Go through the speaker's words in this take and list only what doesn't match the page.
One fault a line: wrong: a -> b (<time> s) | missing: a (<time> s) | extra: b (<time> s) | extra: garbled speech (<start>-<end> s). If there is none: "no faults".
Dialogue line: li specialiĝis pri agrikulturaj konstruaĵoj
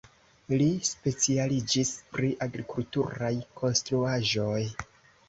no faults